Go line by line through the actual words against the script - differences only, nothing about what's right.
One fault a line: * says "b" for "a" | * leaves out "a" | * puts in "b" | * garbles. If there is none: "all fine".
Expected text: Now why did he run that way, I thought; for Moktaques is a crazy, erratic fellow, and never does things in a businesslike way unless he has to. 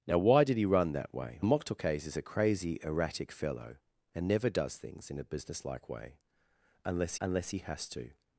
* leaves out "I thought for"
* puts in "unless"